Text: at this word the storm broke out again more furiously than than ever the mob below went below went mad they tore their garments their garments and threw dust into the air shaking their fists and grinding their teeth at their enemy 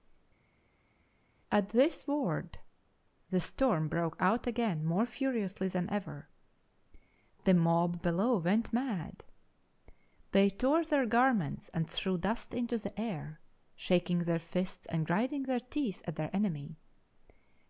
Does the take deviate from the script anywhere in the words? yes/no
yes